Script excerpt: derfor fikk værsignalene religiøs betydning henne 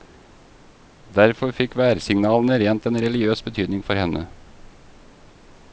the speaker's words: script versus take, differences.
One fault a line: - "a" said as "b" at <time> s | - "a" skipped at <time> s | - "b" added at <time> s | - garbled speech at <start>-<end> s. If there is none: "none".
- "rent en" added at 2.6 s
- "for" added at 3.9 s